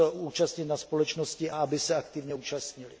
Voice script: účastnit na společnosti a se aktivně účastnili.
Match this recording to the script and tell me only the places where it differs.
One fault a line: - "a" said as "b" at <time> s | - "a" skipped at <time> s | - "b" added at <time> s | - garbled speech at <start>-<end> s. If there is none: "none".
- "aby" added at 1.6 s